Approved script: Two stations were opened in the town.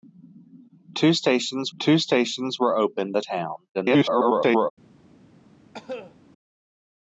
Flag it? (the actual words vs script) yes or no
yes